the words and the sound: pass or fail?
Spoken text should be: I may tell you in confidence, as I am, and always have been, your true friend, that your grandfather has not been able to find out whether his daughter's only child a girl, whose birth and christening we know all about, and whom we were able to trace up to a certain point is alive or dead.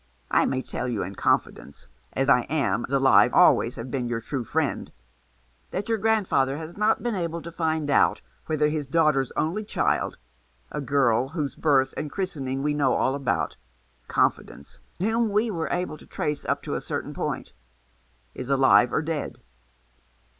fail